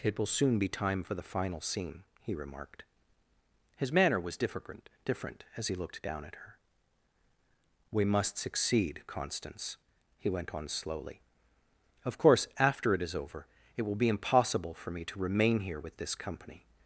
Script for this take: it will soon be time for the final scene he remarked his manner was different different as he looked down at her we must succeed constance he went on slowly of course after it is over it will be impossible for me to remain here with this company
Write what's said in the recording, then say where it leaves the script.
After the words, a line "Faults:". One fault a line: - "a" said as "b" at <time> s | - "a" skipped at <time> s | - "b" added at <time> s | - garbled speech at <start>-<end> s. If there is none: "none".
it will soon be time for the final scene he remarked his manner was different different as he looked down at her we must succeed constance he went on slowly of course after it is over it will be impossible for me to remain here with this company
Faults:
none